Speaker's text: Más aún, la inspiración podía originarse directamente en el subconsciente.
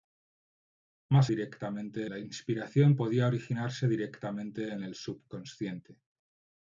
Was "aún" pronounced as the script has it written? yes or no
no